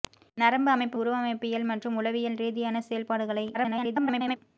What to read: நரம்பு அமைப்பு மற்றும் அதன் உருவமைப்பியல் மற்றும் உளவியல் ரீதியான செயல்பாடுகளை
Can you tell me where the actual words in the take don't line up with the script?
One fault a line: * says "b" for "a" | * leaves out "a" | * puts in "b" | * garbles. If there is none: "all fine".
* leaves out "மற்றும் அதன்"
* garbles